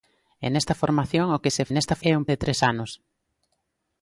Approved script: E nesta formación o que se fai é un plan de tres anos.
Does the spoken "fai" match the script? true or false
false